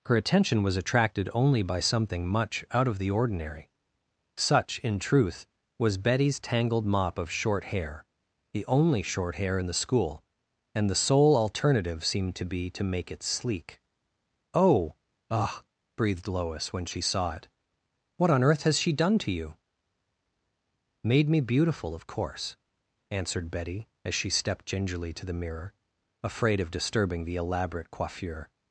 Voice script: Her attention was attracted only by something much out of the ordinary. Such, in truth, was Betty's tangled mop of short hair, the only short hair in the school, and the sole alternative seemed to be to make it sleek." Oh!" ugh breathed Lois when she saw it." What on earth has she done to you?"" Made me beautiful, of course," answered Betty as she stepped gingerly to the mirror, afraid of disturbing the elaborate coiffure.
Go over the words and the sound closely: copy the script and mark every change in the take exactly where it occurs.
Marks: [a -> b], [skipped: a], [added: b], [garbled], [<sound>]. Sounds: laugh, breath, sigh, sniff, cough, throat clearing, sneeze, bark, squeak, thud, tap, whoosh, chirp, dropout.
Her attention was attracted only by something much out of the ordinary. Such, in truth, was Betty's tangled mop of short hair, the only short hair in the school, and the sole alternative seemed to be to make it sleek." Oh!" ugh breathed Lois when she saw it." What on earth has she done to you?"" Made me beautiful, of course," answered Betty as she stepped gingerly to the mirror, afraid of disturbing the elaborate coiffure.